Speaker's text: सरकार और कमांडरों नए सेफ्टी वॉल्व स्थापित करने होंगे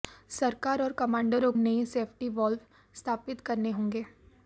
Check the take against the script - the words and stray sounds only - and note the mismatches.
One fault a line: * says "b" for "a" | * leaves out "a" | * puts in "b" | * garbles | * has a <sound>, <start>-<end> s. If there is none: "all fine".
all fine